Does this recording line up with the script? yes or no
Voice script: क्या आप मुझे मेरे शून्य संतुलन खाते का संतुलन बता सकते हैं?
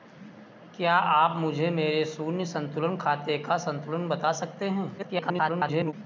no